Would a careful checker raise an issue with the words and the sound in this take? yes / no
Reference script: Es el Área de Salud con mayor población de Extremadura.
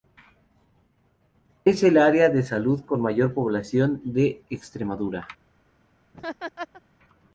yes